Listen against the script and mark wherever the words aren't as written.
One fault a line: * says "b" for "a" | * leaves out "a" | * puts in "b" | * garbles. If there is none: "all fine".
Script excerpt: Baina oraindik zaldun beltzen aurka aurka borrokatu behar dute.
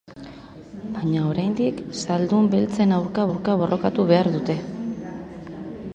all fine